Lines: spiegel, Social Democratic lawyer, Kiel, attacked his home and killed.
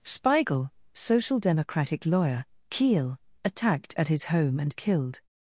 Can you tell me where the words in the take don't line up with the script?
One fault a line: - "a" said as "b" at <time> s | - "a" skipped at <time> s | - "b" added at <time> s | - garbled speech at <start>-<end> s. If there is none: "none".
- "at" added at 4.0 s